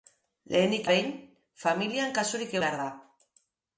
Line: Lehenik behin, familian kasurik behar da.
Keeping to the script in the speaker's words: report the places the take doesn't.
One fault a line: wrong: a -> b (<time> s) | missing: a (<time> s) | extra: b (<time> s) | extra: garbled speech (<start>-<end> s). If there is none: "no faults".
no faults